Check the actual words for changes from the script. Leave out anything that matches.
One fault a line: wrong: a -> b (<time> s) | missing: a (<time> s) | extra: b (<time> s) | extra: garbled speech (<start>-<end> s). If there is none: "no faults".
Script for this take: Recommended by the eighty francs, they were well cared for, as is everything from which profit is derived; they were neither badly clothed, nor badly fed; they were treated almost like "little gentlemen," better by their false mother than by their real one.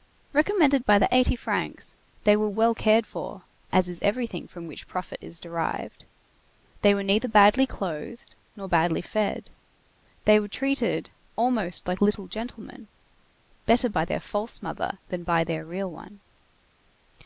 no faults